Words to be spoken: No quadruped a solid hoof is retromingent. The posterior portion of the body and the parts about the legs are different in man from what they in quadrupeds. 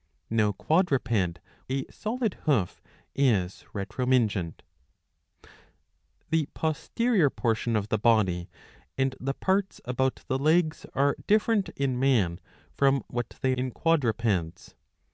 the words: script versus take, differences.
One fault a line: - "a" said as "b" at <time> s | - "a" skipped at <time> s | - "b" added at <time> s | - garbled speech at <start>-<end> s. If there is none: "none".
none